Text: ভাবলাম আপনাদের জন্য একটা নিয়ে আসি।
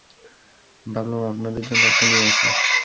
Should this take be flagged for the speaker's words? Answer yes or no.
no